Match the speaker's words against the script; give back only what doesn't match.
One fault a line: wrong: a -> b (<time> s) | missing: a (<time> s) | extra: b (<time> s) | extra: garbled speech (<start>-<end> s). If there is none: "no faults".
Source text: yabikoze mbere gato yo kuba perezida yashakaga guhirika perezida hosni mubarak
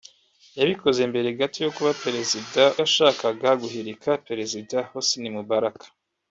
no faults